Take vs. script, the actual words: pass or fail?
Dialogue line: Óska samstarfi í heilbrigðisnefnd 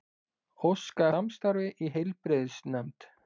pass